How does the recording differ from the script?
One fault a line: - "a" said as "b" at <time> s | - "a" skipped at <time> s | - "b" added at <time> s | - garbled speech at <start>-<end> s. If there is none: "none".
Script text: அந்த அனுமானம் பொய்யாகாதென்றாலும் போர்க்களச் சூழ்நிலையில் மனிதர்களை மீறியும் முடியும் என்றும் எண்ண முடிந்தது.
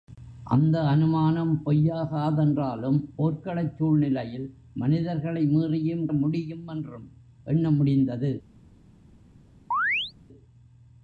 none